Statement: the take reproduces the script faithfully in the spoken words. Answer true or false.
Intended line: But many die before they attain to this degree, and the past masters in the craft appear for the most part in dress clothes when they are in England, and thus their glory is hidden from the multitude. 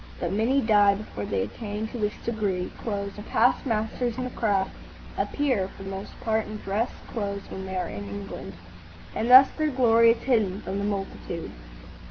false